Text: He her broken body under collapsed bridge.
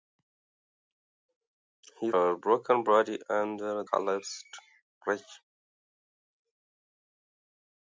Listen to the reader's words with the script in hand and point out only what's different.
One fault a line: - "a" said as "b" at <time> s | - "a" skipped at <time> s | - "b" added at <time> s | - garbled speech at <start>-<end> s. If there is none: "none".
none